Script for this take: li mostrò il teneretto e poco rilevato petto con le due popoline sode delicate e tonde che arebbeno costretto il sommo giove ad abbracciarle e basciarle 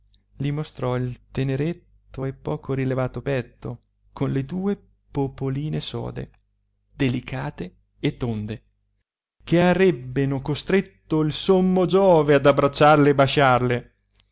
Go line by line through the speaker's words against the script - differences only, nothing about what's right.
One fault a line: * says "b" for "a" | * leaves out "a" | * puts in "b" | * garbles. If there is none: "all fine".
all fine